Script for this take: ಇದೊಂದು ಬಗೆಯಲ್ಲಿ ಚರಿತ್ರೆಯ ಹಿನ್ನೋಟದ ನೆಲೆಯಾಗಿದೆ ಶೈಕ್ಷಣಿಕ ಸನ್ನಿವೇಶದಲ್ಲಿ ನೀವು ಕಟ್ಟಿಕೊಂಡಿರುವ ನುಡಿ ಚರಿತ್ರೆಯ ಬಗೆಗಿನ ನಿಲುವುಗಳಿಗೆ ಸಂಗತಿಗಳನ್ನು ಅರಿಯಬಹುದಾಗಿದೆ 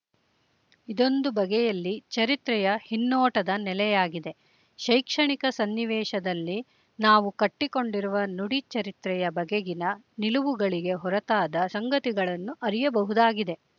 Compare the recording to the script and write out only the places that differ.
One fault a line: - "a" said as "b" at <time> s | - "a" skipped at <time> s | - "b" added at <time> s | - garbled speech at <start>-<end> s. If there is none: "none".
- "ನೀವು" said as "ನಾವು" at 7.0 s
- "ಹೊರತಾದ" added at 11.0 s